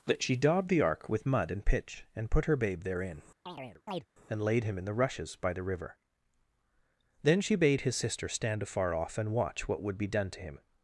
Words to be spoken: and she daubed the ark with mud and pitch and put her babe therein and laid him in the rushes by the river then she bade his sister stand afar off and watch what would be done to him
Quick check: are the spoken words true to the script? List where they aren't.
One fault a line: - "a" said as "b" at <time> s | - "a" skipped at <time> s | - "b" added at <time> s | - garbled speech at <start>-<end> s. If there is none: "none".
- "and" said as "that" at 0.1 s